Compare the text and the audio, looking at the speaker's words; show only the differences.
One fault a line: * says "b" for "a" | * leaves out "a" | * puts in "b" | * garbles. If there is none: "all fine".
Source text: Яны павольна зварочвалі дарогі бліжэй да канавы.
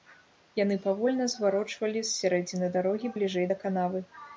* puts in "з сярэдзіны"